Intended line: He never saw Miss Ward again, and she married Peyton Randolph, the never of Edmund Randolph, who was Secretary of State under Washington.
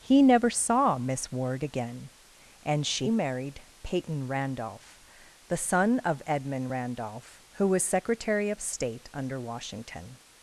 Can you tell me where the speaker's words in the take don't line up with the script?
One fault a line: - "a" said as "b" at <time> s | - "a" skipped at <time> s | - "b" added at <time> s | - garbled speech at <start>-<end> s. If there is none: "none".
- "never" said as "son" at 5.5 s